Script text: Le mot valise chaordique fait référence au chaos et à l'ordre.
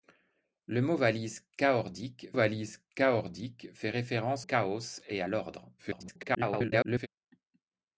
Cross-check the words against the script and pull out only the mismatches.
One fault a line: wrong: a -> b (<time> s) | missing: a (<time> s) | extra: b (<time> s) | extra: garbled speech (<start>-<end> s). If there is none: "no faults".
extra: valise chaordique (2.3 s)
missing: au (4.5 s)
extra: garbled speech (5.8-7.1 s)